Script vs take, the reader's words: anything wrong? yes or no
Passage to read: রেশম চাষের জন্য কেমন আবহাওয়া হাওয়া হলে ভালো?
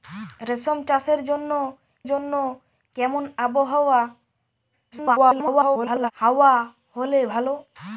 yes